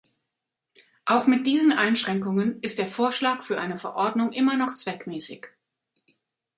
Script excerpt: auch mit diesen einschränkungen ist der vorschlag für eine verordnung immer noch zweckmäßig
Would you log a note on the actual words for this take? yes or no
no